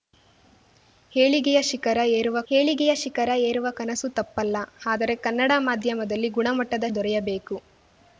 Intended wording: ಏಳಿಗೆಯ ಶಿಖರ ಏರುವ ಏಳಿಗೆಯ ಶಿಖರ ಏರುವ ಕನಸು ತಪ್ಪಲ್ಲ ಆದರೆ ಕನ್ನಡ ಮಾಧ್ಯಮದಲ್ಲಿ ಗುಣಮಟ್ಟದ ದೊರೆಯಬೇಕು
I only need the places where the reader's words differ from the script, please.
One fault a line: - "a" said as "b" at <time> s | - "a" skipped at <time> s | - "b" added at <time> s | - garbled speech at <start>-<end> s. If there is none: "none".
none